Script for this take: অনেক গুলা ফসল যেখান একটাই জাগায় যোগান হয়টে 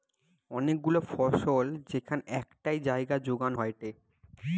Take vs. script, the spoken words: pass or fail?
pass